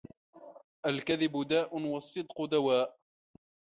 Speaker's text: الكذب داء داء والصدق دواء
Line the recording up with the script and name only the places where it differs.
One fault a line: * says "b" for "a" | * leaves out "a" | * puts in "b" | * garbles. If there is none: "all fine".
* leaves out "داء"